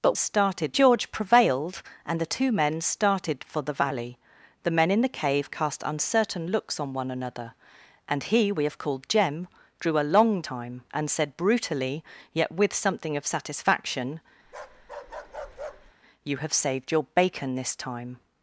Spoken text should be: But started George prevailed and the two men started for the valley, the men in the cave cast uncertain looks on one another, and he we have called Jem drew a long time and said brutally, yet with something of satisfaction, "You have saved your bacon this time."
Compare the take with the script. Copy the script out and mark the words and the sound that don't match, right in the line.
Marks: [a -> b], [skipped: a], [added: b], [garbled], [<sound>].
But started George prevailed and the two men started for the valley, the men in the cave cast uncertain looks on one another, and he we have called Jem drew a long time and said brutally, yet with something of satisfaction, [bark] "You have saved your bacon this time."